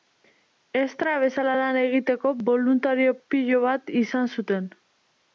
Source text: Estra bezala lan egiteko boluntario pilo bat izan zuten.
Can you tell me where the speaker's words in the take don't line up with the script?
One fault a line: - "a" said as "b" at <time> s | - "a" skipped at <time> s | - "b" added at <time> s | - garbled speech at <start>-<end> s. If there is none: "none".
none